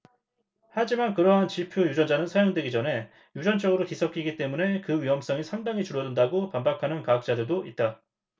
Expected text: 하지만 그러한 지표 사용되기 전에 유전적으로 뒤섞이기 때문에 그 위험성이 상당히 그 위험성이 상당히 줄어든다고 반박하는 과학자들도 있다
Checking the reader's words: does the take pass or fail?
fail